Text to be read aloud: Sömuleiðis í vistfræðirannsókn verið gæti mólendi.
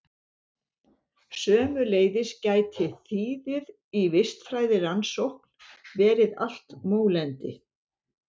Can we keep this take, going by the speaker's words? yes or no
no